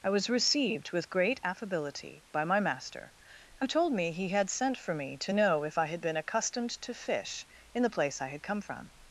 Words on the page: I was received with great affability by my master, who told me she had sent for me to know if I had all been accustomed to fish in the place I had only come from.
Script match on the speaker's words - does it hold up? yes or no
no